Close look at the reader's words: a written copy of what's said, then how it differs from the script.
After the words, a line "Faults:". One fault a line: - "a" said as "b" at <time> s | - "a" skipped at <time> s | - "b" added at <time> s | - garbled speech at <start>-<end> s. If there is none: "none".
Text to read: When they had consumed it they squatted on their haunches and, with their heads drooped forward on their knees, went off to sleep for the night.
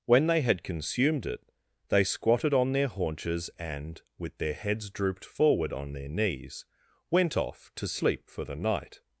When they had consumed it they squatted on their haunches and, with their heads drooped forward on their knees, went off to sleep for the night.
Faults:
none